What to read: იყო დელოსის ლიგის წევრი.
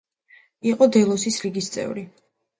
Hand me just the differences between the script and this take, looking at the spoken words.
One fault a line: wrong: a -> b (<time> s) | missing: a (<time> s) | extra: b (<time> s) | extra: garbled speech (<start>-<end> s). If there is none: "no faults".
no faults